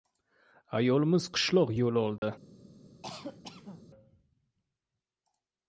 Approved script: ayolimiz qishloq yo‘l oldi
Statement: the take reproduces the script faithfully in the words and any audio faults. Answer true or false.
false